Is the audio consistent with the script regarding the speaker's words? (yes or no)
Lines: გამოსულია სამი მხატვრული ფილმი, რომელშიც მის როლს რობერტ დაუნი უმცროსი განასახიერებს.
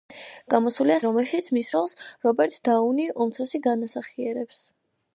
no